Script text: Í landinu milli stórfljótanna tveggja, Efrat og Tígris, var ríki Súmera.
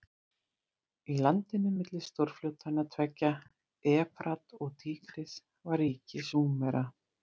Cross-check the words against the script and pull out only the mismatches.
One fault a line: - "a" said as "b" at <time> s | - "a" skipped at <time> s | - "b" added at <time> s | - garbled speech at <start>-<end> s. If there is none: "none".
none